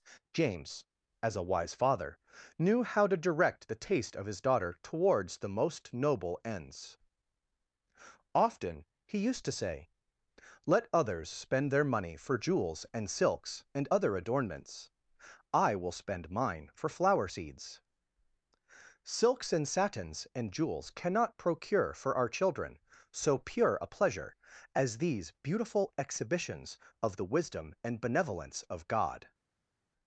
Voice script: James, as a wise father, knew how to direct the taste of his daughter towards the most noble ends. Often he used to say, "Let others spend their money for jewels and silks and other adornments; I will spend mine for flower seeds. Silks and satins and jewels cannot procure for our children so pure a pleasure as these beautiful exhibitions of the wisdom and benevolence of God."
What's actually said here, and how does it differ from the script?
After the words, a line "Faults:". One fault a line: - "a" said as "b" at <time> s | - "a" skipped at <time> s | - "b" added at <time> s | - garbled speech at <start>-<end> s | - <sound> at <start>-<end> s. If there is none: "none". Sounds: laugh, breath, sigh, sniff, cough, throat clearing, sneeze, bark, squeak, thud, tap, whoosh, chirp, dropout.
James, as a wise father, knew how to direct the taste of his daughter towards the most noble ends. Often he used to say, "Let others spend their money for jewels and silks and other adornments; I will spend mine for flower seeds. Silks and satins and jewels cannot procure for our children so pure a pleasure as these beautiful exhibitions of the wisdom and benevolence of God."
Faults:
none